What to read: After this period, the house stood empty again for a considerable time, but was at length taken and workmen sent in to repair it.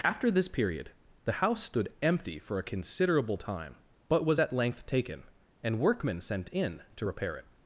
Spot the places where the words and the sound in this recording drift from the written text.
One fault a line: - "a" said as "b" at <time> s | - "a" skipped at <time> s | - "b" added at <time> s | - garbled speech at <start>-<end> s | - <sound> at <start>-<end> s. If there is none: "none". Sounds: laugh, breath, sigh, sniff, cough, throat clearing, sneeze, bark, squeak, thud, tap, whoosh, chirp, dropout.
- "again" skipped at 2.4 s